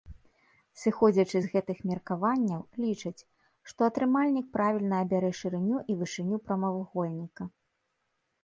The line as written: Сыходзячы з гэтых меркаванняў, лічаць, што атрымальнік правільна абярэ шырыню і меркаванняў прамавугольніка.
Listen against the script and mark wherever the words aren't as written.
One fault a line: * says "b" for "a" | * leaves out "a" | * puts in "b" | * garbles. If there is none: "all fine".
* says "вышыню" for "меркаванняў"